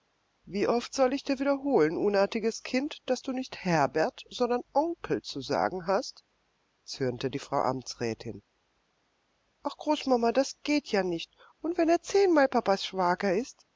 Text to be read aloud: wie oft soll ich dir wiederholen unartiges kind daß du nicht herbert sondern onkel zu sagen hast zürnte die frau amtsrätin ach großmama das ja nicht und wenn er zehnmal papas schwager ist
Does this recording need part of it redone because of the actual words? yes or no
yes